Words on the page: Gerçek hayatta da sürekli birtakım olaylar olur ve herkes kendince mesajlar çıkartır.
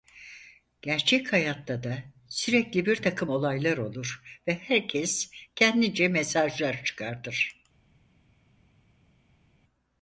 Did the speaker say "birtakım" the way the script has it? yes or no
yes